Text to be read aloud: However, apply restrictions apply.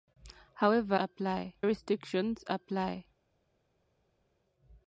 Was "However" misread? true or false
false